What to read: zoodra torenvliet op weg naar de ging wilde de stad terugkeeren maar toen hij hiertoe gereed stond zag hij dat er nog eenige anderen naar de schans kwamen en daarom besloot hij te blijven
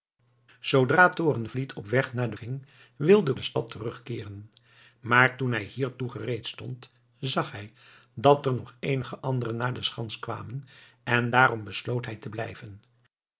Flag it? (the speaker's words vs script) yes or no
no